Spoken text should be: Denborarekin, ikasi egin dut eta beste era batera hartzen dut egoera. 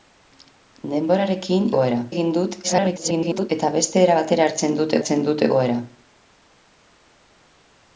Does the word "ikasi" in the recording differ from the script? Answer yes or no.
yes